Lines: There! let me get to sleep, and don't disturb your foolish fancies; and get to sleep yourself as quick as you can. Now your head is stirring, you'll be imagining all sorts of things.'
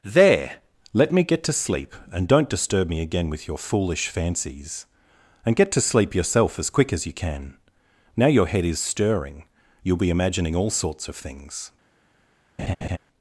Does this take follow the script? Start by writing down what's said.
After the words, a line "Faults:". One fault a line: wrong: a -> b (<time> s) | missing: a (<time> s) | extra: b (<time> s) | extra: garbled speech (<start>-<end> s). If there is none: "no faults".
There! let me get to sleep, and don't disturb me again with your foolish fancies; and get to sleep yourself as quick as you can. Now your head is stirring, you'll be imagining all sorts of things.'
Faults:
extra: me again with (2.9 s)